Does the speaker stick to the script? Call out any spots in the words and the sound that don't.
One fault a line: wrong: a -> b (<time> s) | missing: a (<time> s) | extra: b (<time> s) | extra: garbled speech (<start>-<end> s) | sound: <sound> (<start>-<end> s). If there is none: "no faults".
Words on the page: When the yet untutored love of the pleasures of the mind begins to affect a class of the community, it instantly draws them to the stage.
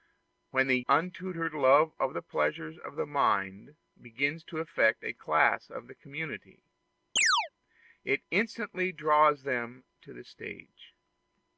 missing: yet (0.8 s)
sound: chirp (7.2-7.5 s)